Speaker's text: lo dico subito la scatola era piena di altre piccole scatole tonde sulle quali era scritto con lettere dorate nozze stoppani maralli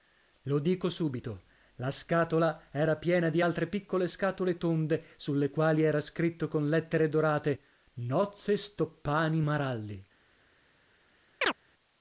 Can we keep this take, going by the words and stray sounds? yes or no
no